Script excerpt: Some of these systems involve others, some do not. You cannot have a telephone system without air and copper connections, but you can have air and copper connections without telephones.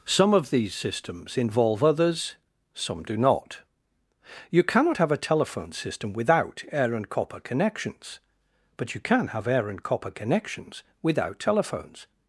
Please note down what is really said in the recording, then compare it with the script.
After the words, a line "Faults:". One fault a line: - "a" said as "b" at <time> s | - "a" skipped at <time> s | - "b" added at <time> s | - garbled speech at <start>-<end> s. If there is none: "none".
Some of these systems involve others, some do not. You cannot have a telephone system without air and copper connections, but you can have air and copper connections without telephones.
Faults:
none